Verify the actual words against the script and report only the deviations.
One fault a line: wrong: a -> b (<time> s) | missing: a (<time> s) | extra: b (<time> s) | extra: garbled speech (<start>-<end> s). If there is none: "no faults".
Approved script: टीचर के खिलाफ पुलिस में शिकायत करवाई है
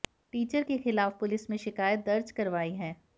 extra: दर्ज (2.0 s)